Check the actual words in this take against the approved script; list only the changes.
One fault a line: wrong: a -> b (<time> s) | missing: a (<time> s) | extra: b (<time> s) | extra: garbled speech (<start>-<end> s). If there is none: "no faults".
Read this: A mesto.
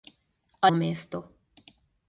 no faults